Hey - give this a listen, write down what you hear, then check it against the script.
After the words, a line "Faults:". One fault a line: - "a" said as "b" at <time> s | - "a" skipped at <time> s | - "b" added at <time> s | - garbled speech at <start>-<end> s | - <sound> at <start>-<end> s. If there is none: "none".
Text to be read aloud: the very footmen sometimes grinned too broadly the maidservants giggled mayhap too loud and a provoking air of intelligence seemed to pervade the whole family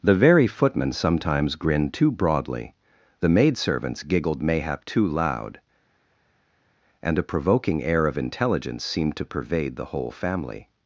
the very footmen sometimes grinned too broadly the maidservants giggled mayhap too loud and a provoking air of intelligence seemed to pervade the whole family
Faults:
none